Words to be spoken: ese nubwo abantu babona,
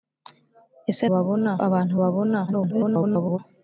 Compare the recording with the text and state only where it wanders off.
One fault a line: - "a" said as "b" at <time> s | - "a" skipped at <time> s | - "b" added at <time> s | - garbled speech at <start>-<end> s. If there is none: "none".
- "nubwo" said as "babona" at 1.1 s
- garbled speech at 2.5-3.4 s